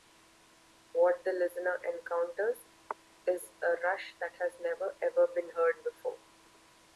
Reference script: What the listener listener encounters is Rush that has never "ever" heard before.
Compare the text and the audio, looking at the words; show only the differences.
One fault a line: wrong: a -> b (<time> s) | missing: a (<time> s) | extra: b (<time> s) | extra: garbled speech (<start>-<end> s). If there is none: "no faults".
missing: listener (1.8 s)
extra: a (3.6 s)
extra: been (5.3 s)